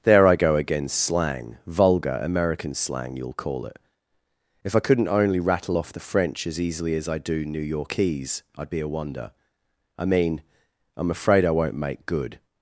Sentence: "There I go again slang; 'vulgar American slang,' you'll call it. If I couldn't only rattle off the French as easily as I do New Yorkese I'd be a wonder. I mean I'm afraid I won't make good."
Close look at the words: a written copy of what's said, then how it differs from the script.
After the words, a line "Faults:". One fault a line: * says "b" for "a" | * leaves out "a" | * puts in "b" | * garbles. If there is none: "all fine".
"There I go again slang; 'vulgar American slang,' you'll call it. If I couldn't only rattle off the French as easily as I do New Yorkese I'd be a wonder. I mean I'm afraid I won't make good."
Faults:
all fine